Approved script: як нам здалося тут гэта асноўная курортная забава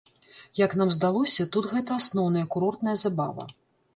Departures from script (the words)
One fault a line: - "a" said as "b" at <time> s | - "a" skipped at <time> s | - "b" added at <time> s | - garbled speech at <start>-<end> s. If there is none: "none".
none